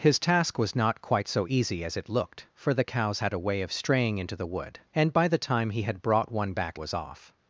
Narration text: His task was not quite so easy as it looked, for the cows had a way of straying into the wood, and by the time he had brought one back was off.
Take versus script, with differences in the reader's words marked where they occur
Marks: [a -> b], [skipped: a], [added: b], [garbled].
His task was not quite so easy as it looked, for the cows had a way of straying into the wood, and by the time he had brought one back was off.